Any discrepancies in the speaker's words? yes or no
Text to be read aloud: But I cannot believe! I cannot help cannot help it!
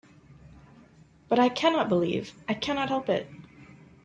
yes